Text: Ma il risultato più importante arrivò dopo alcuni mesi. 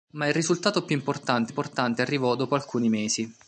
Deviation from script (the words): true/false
true